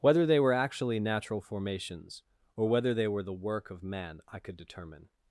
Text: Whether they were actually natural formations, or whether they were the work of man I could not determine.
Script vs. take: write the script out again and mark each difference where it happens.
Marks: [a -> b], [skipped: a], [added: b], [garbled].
Whether they were actually natural formations, or whether they were the work of man I could [skipped: not] determine.